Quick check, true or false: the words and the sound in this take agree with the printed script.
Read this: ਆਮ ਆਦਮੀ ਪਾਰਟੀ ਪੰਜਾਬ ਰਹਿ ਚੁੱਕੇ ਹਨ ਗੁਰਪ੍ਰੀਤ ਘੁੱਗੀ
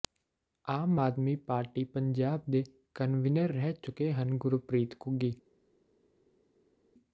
false